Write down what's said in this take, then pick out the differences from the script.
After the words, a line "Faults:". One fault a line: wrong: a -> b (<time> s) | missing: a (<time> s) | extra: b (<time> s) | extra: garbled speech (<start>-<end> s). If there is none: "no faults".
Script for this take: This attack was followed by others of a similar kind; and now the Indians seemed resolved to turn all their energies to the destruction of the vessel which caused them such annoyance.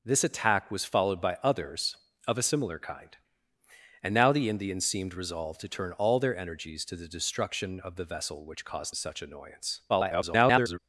This attack was followed by others of a similar kind; and now the Indians seemed resolved to turn all their energies to the destruction of the vessel which caused such annoyance. [garbled]
Faults:
missing: them (8.9 s)
extra: garbled speech (9.9-10.8 s)